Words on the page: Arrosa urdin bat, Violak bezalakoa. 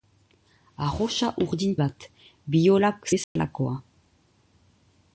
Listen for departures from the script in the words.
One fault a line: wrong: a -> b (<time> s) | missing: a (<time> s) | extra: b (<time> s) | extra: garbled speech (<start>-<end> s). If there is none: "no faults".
no faults